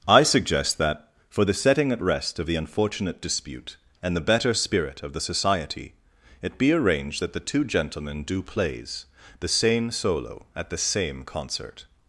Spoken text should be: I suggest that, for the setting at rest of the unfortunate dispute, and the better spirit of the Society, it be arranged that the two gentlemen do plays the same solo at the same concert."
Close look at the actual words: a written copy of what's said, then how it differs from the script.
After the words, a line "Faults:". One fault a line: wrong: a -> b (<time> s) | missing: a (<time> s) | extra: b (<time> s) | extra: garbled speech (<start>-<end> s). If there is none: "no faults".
I suggest that, for the setting at rest of the unfortunate dispute, and the better spirit of the Society, it be arranged that the two gentlemen do plays the same solo at the same concert."
Faults:
no faults